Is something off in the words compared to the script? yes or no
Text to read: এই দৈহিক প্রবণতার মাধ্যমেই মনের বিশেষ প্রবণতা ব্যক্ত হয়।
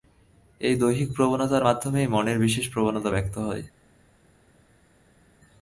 no